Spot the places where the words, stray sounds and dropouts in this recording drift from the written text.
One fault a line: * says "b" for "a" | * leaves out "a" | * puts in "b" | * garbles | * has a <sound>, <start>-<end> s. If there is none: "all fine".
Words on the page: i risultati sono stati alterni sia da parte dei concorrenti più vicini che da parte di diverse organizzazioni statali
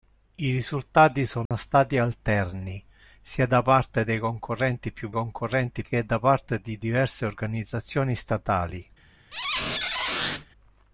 * has a dropout, 1.5-1.5 s
* says "concorrenti" for "vicini"
* has a squeak, 9.3-10.5 s